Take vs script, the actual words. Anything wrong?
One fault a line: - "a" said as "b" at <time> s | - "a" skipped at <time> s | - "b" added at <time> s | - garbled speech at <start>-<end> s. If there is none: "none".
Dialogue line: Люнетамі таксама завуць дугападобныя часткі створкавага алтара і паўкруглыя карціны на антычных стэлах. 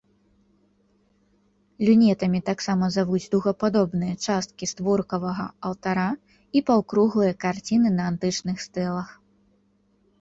none